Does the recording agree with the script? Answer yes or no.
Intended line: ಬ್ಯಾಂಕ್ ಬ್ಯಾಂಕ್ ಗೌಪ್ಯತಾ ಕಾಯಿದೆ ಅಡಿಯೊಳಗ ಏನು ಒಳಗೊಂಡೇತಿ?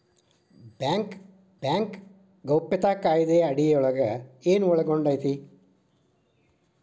yes